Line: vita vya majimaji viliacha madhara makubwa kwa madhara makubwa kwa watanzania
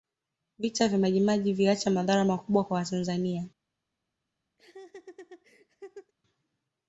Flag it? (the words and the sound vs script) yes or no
yes